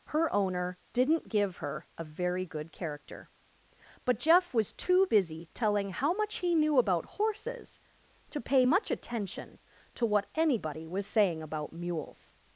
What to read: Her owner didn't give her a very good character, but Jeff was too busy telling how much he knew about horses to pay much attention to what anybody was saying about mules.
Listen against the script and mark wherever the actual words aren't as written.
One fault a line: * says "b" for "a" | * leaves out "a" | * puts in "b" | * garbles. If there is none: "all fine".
all fine